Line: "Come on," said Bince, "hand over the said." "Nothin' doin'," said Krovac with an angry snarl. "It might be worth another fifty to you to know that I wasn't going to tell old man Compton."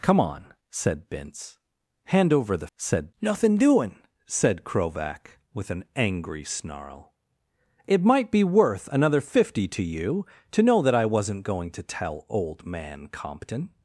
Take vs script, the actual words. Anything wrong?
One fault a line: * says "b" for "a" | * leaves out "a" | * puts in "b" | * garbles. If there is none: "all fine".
all fine